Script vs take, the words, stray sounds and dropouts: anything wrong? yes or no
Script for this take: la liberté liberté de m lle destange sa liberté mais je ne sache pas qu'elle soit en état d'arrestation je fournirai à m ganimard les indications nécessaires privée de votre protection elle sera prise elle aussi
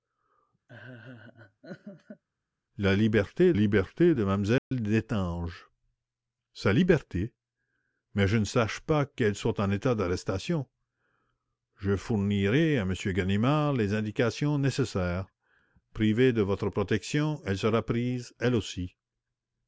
yes